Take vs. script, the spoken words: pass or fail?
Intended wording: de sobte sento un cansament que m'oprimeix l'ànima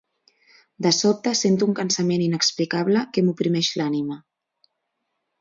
fail